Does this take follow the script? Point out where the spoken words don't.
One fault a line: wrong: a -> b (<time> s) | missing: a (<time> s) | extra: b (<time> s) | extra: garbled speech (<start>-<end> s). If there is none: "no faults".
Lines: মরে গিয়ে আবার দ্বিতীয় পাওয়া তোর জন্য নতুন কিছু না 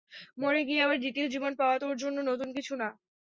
extra: জীবন (1.3 s)